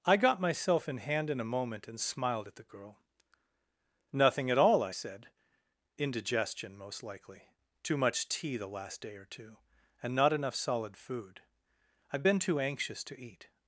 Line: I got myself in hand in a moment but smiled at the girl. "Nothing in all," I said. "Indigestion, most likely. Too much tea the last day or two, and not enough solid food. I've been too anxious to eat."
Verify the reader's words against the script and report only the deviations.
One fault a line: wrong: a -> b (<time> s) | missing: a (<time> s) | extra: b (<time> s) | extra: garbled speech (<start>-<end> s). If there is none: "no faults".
wrong: but -> and (1.9 s)
wrong: in -> at (4.5 s)